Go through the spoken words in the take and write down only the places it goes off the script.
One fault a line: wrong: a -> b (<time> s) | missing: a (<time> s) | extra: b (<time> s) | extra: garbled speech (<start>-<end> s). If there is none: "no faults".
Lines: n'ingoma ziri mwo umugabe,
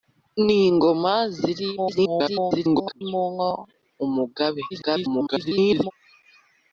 extra: garbled speech (1.8-3.0 s)
extra: garbled speech (4.7-5.9 s)